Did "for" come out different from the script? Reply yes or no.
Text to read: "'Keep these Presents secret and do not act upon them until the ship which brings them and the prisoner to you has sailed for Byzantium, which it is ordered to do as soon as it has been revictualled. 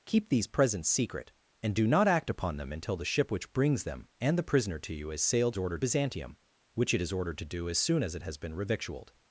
yes